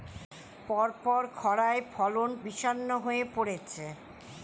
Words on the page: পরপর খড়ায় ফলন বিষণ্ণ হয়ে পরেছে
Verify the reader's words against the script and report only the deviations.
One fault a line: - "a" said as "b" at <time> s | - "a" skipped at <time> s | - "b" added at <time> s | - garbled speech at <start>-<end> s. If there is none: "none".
none